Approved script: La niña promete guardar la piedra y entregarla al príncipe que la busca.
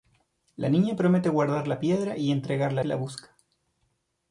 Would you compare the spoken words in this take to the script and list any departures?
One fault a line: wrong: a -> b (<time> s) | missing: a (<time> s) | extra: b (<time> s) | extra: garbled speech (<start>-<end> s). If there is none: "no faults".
missing: al príncipe (2.8 s)